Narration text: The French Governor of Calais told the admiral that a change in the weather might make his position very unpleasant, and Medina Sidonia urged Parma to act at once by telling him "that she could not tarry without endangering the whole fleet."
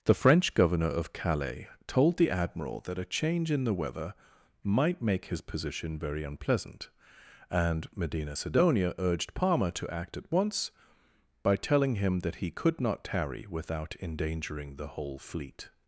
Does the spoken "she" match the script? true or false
false